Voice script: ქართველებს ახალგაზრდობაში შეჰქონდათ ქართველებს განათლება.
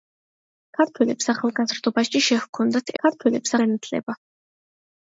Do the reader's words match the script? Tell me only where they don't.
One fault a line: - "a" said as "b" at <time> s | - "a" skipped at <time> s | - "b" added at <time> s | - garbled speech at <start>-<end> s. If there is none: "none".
none